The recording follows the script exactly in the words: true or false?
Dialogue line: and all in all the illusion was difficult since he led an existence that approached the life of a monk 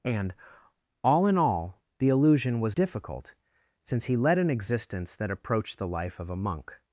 true